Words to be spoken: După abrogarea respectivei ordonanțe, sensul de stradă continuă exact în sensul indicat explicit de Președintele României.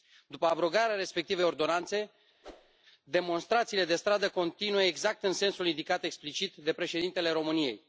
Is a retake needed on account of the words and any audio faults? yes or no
yes